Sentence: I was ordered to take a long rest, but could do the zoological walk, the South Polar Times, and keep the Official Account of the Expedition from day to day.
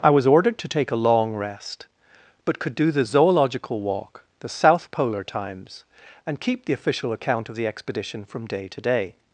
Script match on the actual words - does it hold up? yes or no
yes